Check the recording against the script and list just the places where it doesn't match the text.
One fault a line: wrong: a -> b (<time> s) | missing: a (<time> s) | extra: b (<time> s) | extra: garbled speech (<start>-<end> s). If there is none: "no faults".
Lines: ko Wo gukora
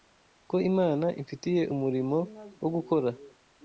extra: Imana imfitiye umurimo (0.7 s)